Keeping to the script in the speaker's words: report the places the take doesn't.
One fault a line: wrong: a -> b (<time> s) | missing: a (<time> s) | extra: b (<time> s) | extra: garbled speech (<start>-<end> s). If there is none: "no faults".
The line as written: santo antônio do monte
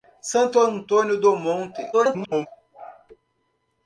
extra: garbled speech (1.9-2.5 s)